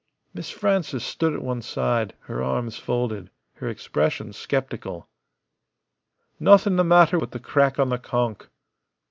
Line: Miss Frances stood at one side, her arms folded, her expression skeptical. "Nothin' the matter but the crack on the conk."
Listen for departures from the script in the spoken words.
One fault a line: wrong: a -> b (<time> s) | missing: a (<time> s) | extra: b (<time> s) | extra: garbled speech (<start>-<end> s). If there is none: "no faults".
no faults